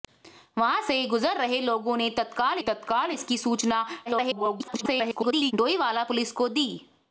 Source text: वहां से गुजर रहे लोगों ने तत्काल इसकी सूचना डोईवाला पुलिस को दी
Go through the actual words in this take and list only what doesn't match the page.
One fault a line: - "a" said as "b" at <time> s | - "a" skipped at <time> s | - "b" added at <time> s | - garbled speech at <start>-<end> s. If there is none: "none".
- "तत्काल" added at 2.6 s
- garbled speech at 4.1-5.5 s